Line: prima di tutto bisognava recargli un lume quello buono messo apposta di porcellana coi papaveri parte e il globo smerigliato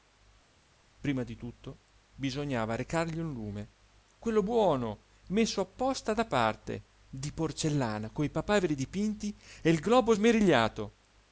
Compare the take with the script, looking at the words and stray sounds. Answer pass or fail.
fail